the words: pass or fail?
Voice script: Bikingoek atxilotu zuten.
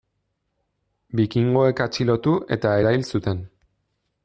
fail